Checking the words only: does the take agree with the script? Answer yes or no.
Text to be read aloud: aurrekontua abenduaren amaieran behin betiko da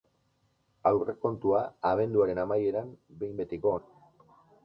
yes